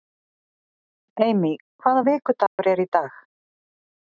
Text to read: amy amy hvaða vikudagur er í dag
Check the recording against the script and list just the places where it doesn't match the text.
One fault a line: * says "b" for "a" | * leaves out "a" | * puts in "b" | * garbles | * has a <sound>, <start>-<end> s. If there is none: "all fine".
* leaves out "amy"
* has a dropout, 2.5-2.6 s